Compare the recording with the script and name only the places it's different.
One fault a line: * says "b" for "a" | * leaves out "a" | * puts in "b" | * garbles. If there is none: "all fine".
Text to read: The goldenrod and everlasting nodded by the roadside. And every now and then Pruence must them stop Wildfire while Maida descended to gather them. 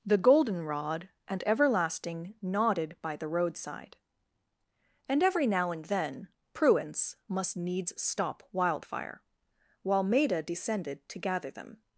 * says "needs" for "them"